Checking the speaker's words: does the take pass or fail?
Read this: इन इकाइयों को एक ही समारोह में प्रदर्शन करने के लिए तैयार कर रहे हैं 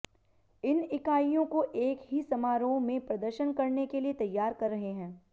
pass